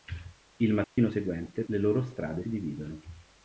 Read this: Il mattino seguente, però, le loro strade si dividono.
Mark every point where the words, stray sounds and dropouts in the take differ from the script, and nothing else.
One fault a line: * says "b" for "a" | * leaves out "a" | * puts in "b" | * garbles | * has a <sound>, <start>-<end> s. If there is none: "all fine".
* has a dropout, 0.8-1.0 s
* leaves out "però"
* leaves out "si"